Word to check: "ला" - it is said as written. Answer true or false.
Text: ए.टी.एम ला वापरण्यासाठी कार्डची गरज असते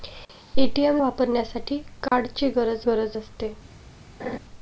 false